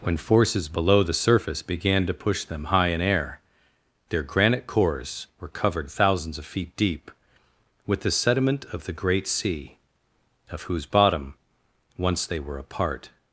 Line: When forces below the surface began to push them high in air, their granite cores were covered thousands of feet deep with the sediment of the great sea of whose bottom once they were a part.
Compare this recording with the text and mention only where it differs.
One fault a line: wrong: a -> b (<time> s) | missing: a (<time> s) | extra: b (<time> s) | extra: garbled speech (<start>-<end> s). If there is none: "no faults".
no faults